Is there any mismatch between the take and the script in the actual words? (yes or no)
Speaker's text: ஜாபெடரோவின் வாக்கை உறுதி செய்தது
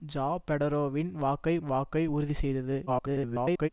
yes